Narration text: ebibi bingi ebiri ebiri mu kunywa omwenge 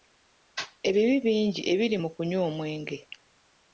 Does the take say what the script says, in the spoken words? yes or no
no